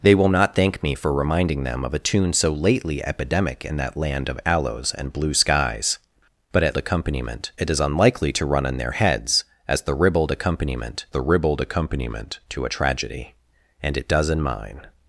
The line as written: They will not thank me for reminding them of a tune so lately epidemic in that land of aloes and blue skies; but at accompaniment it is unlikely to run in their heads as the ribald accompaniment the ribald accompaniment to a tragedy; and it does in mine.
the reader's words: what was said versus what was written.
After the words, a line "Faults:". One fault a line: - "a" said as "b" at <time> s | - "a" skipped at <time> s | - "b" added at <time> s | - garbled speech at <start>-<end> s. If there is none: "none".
They will not thank me for reminding them of a tune so lately epidemic in that land of aloes and blue skies; but at accompaniment it is unlikely to run in their heads as the ribald accompaniment the ribald accompaniment to a tragedy; and it does in mine.
Faults:
none